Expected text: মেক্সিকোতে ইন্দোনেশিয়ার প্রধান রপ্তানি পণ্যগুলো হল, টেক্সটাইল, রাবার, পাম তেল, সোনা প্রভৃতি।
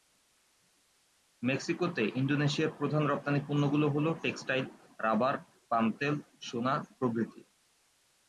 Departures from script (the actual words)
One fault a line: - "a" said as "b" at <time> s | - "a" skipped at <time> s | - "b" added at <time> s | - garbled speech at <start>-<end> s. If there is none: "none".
none